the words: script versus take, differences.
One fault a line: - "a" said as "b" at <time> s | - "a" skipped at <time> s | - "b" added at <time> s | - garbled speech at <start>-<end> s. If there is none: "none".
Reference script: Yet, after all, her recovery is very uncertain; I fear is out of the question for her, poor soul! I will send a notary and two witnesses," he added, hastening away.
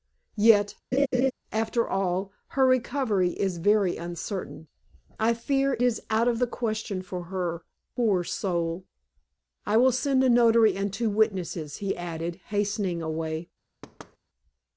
none